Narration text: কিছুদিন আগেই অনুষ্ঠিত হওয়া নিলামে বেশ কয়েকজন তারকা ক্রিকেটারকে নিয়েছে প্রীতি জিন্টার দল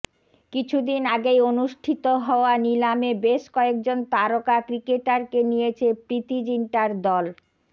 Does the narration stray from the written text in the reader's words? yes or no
no